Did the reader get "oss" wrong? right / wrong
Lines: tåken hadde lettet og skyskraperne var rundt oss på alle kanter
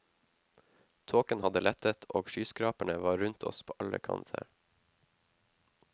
right